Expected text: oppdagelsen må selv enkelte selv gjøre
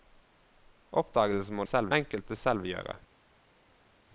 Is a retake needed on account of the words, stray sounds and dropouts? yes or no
no